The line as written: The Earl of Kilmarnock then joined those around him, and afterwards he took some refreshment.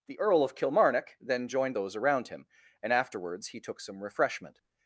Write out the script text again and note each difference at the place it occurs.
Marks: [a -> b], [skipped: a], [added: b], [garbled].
The Earl of Kilmarnock then joined those around him, and afterwards he took some refreshment.